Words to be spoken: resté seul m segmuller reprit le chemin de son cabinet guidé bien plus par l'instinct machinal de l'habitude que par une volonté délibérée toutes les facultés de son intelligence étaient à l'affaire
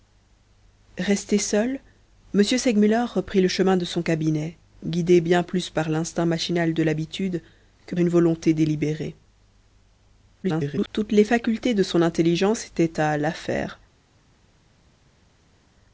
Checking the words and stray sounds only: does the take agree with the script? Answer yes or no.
no